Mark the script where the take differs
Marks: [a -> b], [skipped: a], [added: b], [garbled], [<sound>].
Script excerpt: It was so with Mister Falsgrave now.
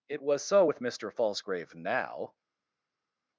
It was so with Mister Falsgrave now.